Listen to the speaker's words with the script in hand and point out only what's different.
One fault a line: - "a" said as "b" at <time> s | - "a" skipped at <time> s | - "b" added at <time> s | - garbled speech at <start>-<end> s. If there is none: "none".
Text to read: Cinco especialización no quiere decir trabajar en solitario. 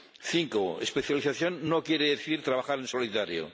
none